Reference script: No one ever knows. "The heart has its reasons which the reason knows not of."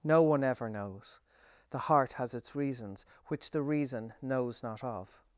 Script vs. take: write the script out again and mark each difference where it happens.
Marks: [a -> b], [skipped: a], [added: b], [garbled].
No one ever knows. "The heart has its reasons which the reason knows not of."